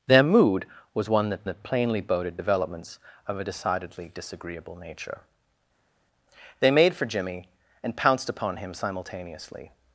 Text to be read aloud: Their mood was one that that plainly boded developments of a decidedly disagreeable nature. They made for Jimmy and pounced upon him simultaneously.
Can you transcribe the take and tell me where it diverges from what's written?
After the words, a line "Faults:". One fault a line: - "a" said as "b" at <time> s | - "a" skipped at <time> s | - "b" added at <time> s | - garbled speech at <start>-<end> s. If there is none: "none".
Their mood was one that that plainly boded developments of a decidedly disagreeable nature. They made for Jimmy and pounced upon him simultaneously.
Faults:
none